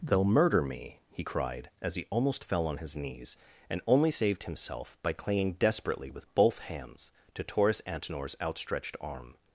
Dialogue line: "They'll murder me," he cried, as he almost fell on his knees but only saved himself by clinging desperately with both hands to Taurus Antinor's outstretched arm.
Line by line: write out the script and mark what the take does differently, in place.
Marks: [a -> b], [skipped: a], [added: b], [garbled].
"They'll murder me," he cried, as he almost fell on his knees [but -> and] only saved himself by clinging desperately with both hands to Taurus Antinor's outstretched arm.